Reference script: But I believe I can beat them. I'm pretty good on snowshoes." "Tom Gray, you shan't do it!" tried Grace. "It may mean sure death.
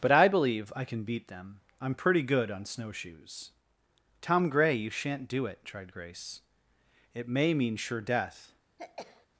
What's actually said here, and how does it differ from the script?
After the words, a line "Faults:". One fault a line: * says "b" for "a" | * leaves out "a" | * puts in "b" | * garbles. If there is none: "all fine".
But I believe I can beat them. I'm pretty good on snowshoes." "Tom Gray, you shan't do it!" tried Grace. "It may mean sure death.
Faults:
all fine